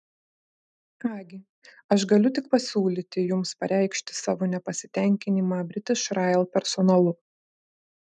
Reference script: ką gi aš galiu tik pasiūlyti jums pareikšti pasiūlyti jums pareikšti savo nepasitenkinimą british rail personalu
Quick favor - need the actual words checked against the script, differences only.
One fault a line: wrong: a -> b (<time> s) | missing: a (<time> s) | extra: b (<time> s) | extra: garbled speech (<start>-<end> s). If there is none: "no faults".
missing: pasiūlyti jums pareikšti (4.2 s)